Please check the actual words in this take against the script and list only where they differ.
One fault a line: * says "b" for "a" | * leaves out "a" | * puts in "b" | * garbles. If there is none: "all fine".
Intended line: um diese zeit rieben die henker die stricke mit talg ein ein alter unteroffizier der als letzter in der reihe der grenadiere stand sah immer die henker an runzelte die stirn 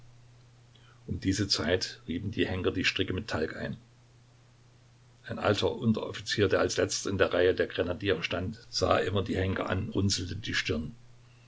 all fine